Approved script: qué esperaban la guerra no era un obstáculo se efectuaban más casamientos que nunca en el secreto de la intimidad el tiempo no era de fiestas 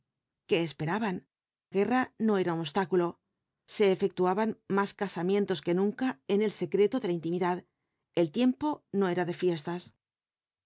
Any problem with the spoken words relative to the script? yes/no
yes